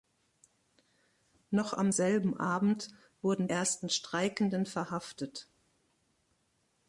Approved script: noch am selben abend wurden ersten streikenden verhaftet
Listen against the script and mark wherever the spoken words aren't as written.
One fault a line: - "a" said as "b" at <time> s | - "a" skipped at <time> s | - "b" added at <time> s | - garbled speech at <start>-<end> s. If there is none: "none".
none